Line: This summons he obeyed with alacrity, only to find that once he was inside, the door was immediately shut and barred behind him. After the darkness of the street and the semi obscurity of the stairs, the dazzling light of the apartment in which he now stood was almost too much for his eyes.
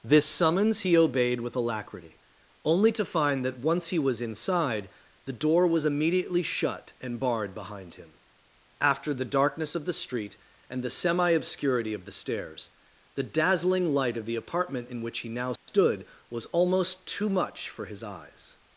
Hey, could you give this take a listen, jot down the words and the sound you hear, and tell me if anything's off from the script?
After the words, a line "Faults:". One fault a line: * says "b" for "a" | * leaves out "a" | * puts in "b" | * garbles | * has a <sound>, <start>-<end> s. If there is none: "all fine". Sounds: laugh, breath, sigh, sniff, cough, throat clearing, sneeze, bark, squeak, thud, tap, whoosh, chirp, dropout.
This summons he obeyed with alacrity, only to find that once he was inside, the door was immediately shut and barred behind him. After the darkness of the street and the semi obscurity of the stairs, the dazzling light of the apartment in which he now stood was almost too much for his eyes.
Faults:
* has a dropout, 15.6-15.7 s